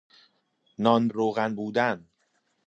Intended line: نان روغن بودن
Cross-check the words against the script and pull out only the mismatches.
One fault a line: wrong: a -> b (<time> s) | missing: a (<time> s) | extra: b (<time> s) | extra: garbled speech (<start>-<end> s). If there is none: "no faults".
no faults